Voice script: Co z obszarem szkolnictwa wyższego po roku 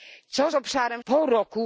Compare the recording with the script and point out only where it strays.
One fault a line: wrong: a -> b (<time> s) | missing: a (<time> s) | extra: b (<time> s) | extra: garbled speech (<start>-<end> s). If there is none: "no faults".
missing: szkolnictwa wyższego (1.0 s)